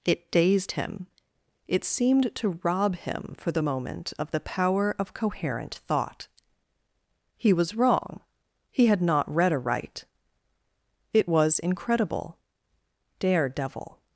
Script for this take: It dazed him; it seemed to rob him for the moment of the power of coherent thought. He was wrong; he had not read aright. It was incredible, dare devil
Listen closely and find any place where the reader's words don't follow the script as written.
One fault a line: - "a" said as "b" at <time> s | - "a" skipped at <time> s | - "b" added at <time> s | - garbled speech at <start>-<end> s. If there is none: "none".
none